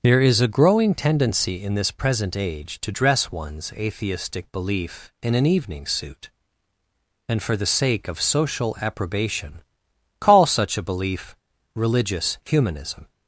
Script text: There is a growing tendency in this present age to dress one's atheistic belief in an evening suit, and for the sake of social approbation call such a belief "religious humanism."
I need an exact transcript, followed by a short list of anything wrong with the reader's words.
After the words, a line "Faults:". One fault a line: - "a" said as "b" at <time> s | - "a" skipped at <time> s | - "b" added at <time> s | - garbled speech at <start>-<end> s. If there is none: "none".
There is a growing tendency in this present age to dress one's atheistic belief in an evening suit, and for the sake of social approbation call such a belief "religious humanism."
Faults:
none